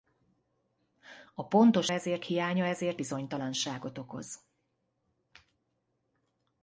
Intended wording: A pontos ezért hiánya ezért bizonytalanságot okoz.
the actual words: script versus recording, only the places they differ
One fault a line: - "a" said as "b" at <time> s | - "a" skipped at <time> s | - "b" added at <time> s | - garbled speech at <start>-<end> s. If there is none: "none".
none